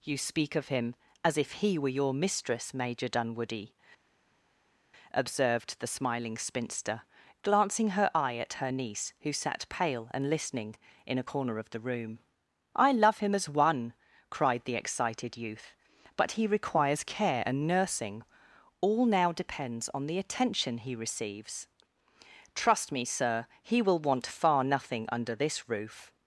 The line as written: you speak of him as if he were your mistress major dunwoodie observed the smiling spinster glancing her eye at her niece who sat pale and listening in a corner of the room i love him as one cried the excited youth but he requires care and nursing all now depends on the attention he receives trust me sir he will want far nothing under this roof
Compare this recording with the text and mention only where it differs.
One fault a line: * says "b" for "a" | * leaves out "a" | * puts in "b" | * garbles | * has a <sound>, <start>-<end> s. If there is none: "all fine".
all fine